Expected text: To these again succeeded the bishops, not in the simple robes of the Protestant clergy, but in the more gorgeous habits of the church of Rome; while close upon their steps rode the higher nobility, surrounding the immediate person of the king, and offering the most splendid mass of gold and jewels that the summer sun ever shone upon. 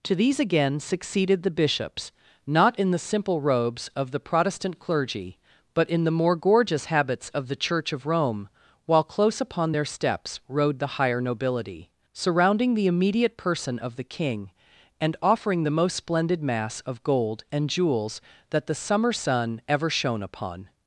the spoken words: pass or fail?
pass